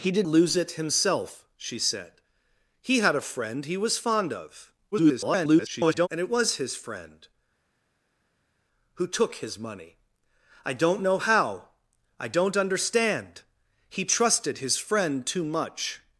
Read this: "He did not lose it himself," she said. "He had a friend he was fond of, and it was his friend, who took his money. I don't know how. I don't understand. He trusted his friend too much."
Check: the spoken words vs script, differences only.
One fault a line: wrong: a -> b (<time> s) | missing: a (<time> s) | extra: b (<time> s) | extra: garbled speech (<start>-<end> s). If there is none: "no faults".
missing: not (0.2 s)
extra: garbled speech (4.9-6.1 s)